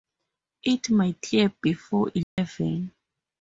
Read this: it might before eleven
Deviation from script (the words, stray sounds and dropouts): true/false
true